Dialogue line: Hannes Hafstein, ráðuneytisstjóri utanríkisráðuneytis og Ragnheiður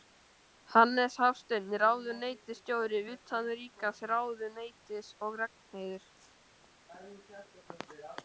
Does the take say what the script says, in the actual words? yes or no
yes